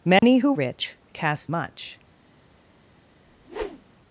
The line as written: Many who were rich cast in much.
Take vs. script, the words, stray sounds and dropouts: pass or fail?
fail